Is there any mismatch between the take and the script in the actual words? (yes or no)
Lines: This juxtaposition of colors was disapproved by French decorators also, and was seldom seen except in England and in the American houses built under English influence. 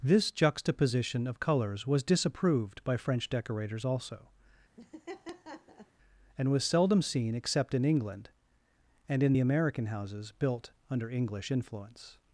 no